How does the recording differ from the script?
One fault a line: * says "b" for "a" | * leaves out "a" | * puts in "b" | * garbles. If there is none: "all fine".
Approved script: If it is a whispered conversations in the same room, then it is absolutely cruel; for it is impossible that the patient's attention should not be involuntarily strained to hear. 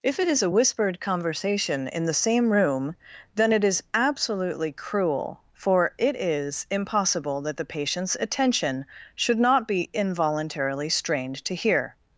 * says "conversation" for "conversations"